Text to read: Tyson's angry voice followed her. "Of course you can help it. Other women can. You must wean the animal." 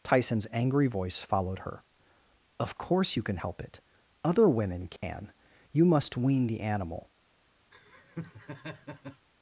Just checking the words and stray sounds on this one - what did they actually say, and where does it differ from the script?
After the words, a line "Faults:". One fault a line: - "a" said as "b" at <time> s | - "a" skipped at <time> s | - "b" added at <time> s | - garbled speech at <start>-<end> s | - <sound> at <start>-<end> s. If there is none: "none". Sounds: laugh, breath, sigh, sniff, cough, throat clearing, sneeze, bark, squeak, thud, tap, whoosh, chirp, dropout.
Tyson's angry voice followed her. "Of course you can help it. Other women can. You must wean the animal."
Faults:
- dropout at 5.0-5.0 s
- laugh at 7.7-9.3 s